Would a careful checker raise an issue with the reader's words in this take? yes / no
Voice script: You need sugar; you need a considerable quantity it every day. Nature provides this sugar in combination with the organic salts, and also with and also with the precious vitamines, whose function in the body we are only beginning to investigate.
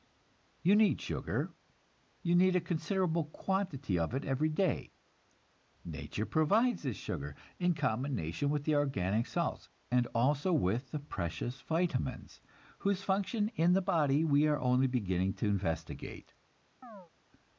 yes